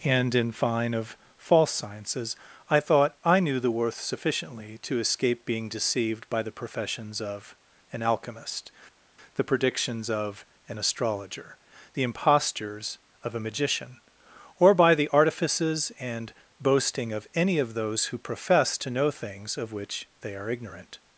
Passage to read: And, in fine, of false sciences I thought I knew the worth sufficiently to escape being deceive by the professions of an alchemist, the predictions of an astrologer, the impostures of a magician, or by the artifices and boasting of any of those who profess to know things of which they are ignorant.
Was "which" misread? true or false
false